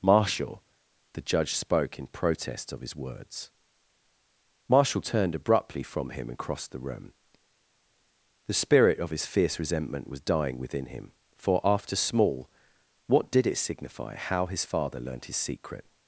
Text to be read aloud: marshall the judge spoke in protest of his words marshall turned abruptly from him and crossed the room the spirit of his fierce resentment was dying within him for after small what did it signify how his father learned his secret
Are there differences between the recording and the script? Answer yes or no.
no